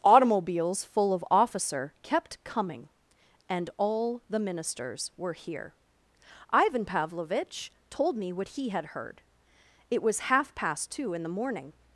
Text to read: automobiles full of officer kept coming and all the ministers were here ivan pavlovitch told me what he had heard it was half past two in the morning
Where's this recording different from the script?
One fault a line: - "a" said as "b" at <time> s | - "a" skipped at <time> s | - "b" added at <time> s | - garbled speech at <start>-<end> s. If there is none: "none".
none